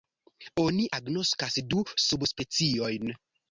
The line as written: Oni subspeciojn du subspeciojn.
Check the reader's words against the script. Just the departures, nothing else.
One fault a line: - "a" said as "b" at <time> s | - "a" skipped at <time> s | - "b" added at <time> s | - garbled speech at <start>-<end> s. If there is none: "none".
- "subspeciojn" said as "agnoskas" at 1.0 s